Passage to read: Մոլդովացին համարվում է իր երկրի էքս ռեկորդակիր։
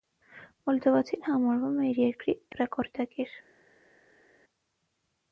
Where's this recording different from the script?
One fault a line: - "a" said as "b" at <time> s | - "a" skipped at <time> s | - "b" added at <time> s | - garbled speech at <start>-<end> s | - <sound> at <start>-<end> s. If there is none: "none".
- "էքս" skipped at 2.4 s